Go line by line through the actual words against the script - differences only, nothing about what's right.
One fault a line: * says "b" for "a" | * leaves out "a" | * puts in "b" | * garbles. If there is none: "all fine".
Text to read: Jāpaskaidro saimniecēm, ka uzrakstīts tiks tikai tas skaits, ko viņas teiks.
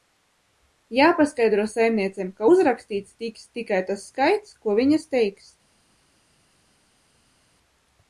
all fine